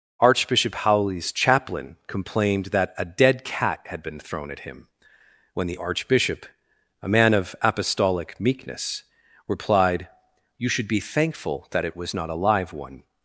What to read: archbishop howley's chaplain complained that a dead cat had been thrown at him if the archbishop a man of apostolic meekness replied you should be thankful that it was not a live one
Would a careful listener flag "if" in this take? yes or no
yes